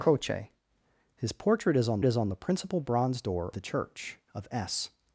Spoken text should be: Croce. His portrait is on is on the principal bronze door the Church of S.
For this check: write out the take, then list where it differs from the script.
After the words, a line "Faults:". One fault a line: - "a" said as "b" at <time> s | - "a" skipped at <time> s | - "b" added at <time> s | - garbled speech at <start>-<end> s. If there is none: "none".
Croce. His portrait is on is on the principal bronze door the Church of S.
Faults:
none